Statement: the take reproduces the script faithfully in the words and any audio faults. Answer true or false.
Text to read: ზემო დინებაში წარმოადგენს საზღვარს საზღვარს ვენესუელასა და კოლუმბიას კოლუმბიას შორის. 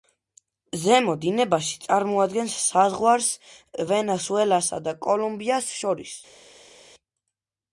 false